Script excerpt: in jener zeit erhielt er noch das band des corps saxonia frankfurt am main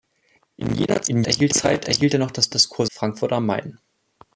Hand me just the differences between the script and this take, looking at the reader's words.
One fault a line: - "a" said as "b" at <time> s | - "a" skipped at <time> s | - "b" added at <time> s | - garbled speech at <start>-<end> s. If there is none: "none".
- "jener" said as "erhielt" at 1.2 s
- "band" skipped at 2.5 s
- "saxonia" skipped at 2.9 s